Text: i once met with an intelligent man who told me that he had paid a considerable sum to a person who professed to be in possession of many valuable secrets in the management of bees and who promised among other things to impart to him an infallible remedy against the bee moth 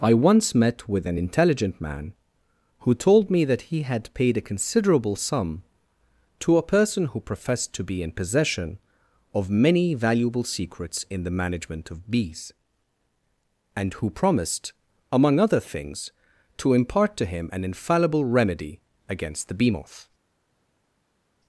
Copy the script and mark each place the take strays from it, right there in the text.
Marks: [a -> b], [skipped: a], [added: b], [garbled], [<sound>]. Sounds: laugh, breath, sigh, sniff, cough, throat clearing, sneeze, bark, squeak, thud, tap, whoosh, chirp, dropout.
i once met with an intelligent man who told me that he had paid a considerable sum to a person who professed to be in possession of many valuable secrets in the management of bees and who promised among other things to impart to him an infallible remedy against the bee moth